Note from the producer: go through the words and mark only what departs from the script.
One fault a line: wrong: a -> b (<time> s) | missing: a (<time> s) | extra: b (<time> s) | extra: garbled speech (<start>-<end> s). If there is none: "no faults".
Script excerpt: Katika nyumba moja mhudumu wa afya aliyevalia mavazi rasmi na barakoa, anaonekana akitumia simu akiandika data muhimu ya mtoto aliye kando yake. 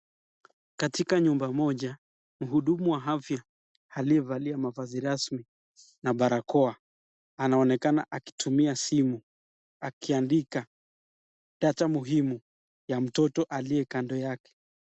no faults